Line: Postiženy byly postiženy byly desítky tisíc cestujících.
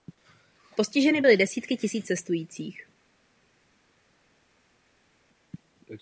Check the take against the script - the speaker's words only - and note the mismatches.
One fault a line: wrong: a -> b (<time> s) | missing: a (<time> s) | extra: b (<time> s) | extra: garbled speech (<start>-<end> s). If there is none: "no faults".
missing: postiženy byly (1.4 s)